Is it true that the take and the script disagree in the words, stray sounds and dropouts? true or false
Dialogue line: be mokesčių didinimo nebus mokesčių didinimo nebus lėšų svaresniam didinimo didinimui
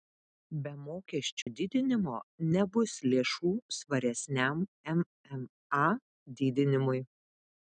true